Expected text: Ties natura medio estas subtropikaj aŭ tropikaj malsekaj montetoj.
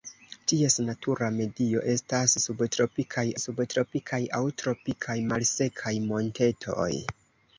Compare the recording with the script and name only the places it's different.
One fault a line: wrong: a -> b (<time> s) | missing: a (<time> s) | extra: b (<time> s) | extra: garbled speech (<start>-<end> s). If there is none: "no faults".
extra: subtropikaj (3.4 s)